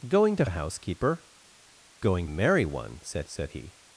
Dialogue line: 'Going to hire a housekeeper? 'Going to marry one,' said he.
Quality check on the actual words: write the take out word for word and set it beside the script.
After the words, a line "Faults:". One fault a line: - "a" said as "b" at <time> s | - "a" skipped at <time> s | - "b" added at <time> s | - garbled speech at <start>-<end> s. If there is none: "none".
'Going to a housekeeper? 'Going marry one,' said said he.
Faults:
- "hire" skipped at 0.5 s
- "to" skipped at 2.3 s
- "said" added at 3.3 s